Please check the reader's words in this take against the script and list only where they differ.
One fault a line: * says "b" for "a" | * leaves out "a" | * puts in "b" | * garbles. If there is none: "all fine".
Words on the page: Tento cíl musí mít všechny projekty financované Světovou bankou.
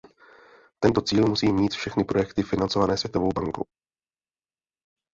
all fine